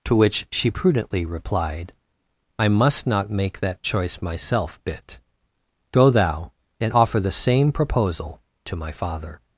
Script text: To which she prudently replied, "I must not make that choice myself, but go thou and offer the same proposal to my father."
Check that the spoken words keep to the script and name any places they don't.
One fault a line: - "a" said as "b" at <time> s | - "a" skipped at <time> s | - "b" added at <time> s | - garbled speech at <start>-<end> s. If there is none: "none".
- "but" said as "bit" at 4.8 s